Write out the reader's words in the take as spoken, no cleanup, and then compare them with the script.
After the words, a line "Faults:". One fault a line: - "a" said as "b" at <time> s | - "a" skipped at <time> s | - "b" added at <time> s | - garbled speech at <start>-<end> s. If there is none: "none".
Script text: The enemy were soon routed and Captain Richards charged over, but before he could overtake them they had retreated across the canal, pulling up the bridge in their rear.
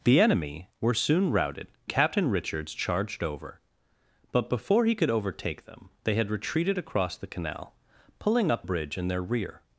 The enemy were soon routed Captain Richards charged over, but before he could overtake them they had retreated across the canal, pulling up bridge in their rear.
Faults:
- "and" skipped at 1.7 s
- "the" skipped at 8.7 s